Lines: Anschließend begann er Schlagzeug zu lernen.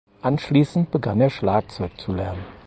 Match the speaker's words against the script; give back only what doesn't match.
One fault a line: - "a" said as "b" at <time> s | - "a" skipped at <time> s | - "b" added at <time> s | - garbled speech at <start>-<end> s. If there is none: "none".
none